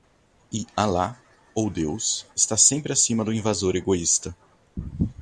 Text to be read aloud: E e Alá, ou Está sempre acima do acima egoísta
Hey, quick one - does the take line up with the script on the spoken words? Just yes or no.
no